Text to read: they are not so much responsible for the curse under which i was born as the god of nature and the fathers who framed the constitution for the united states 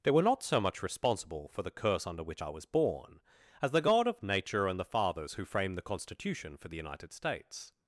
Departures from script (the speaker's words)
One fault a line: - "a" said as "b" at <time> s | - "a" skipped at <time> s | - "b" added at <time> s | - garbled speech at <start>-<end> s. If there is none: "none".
- "are" said as "were" at 0.1 s